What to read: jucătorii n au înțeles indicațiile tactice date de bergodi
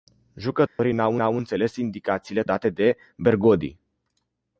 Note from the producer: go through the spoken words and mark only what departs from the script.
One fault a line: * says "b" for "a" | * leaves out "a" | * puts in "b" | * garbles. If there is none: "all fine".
* puts in "au"
* leaves out "tactice"